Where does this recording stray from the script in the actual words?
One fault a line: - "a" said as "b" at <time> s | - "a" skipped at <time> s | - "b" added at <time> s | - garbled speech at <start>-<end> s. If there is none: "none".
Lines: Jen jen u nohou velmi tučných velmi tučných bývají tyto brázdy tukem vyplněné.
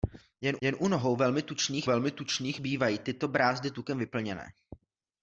none